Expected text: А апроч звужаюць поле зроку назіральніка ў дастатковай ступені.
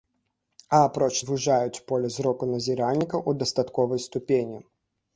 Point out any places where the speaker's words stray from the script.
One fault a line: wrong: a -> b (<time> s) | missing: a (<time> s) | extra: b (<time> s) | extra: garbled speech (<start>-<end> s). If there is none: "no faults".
no faults